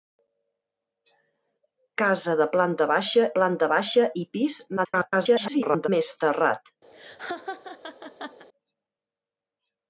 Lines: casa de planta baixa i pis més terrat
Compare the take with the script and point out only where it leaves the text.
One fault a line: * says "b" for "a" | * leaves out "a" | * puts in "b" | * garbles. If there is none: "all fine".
* puts in "planta baixa"
* garbles